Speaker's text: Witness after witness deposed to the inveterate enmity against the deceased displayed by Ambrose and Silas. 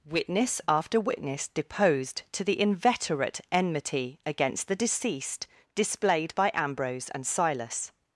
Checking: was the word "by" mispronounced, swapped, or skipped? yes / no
no